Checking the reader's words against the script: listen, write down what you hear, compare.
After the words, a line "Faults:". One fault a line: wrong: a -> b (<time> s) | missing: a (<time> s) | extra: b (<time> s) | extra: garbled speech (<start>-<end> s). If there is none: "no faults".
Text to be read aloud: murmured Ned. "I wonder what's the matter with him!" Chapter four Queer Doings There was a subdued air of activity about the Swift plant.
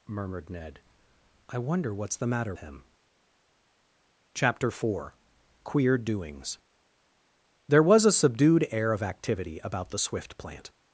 murmured Ned. "I wonder what's the matter him!" Chapter four Queer Doings There was a subdued air of activity about the Swift plant.
Faults:
missing: with (2.5 s)